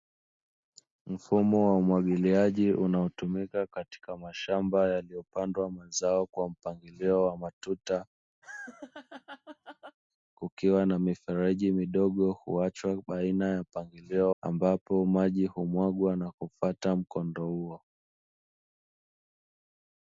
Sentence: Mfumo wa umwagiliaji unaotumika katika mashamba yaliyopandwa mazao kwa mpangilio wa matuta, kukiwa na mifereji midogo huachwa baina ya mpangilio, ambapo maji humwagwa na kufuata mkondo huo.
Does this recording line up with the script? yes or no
yes